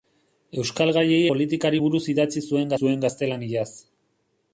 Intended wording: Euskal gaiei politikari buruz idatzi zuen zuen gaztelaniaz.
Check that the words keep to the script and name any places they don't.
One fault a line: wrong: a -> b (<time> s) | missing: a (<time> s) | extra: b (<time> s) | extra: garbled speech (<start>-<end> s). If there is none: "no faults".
no faults